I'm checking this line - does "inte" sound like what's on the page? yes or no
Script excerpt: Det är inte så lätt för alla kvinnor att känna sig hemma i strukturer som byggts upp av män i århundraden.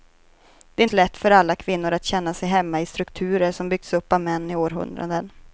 no